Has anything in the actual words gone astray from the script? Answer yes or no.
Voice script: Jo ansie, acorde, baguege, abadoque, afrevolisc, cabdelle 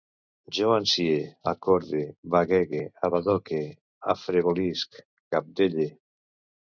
no